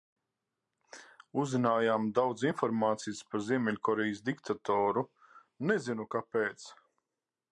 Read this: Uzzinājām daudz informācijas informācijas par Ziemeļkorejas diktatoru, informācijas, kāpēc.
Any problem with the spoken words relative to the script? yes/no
yes